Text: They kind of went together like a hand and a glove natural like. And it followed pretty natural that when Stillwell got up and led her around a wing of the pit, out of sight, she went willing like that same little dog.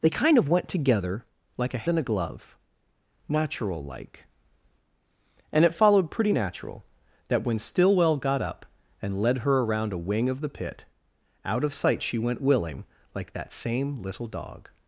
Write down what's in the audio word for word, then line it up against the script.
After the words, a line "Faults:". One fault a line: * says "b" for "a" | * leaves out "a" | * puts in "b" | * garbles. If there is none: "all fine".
They kind of went together like a and a glove natural like. And it followed pretty natural that when Stillwell got up and led her around a wing of the pit, out of sight, she went willing like that same little dog.
Faults:
* leaves out "hand"